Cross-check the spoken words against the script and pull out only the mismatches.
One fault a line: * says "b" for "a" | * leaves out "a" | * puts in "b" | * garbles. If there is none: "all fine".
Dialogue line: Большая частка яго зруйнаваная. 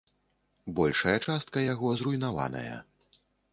all fine